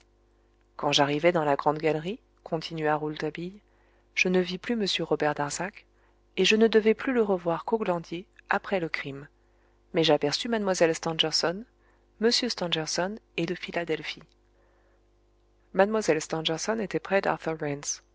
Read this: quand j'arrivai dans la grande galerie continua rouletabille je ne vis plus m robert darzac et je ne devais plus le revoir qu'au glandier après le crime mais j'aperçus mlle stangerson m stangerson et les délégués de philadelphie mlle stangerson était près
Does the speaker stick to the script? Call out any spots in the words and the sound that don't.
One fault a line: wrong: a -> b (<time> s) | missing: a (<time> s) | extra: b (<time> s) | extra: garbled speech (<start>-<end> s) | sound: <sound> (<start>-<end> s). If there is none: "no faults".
missing: les délégués (13.4 s)